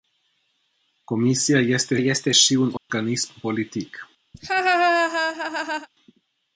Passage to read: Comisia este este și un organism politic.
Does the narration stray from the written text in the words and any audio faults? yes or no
yes